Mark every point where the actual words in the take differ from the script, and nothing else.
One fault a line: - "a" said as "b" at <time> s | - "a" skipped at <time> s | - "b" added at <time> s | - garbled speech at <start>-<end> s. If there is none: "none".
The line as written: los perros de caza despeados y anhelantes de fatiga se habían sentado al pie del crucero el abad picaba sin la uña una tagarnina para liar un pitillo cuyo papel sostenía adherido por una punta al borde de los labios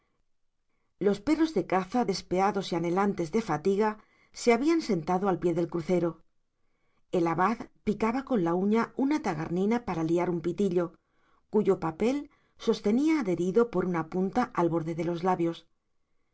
- "sin" said as "con" at 8.2 s